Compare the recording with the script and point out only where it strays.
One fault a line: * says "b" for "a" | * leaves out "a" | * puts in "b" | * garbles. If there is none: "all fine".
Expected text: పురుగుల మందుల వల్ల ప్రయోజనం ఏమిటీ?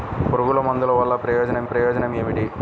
* puts in "ప్రయోజనం"